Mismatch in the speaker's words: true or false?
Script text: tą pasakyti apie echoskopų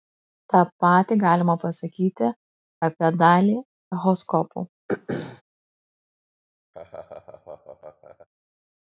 true